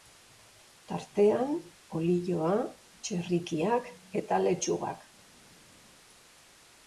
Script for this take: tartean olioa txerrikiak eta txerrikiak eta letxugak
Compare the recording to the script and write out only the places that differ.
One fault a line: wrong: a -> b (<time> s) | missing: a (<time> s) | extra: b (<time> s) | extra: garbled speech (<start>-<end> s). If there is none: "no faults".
missing: txerrikiak eta (4.4 s)